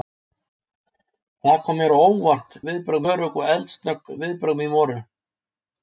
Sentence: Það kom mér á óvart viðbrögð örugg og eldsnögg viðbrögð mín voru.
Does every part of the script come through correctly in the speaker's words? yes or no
yes